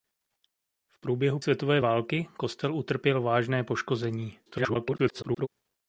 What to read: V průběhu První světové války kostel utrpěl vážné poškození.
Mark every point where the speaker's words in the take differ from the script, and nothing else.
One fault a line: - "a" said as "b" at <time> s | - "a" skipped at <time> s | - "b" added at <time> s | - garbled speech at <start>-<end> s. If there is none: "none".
- "První" skipped at 1.4 s
- garbled speech at 4.5-5.5 s